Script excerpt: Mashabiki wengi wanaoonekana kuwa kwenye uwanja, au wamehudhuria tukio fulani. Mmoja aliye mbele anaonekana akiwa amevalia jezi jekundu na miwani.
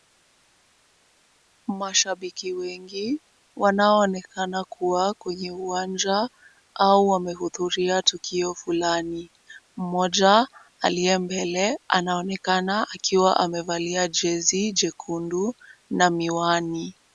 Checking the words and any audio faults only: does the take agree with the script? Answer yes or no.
yes